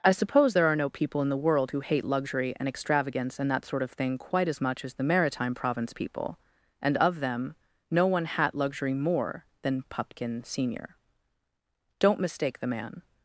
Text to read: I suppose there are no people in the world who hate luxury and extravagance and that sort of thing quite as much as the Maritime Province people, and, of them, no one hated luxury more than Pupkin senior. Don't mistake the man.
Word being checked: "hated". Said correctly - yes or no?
no